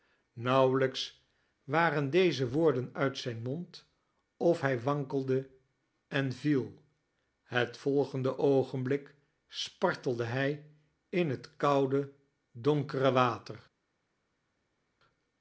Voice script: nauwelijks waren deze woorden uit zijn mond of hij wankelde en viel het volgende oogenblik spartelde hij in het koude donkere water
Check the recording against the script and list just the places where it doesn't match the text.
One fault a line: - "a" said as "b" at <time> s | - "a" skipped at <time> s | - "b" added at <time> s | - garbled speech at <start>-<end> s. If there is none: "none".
none